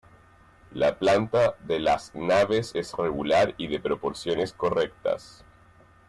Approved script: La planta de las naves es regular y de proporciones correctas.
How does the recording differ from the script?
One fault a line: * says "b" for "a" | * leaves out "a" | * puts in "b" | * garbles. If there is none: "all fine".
all fine